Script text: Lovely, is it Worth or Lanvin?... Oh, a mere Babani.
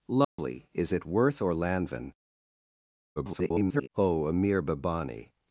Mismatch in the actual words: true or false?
true